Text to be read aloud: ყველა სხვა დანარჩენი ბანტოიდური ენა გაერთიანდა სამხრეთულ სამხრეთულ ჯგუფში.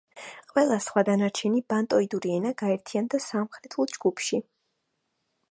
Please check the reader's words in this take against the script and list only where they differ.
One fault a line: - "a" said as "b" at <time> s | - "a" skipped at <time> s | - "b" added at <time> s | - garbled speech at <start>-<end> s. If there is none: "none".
- "სამხრეთულ" skipped at 3.9 s